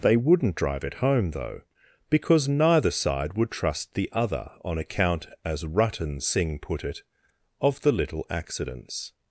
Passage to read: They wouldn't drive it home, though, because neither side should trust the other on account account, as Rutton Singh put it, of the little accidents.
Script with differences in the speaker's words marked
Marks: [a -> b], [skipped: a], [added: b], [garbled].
They wouldn't drive it home, though, because neither side [should -> would] trust the other on account [skipped: account,] as Rutton Singh put it, of the little accidents.